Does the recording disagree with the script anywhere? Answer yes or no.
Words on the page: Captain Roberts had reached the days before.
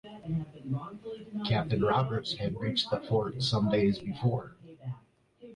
yes